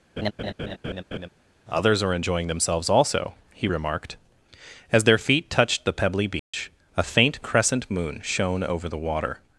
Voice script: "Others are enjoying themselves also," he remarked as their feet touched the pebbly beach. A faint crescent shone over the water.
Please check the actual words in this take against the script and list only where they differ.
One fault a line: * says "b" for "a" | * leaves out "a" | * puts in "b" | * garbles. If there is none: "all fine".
* puts in "moon"